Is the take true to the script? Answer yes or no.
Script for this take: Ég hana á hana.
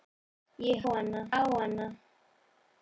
yes